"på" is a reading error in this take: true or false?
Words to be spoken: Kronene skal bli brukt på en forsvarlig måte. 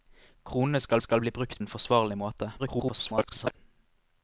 true